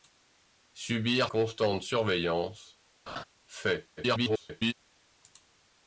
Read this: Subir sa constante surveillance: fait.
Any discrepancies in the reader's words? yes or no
yes